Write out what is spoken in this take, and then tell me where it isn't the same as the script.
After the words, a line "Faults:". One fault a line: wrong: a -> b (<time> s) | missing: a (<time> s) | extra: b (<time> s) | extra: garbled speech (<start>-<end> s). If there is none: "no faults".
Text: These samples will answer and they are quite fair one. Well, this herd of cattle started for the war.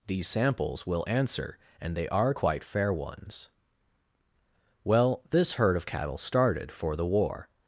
These samples will answer and they are quite fair ones. Well, this herd of cattle started for the war.
Faults:
wrong: one -> ones (2.9 s)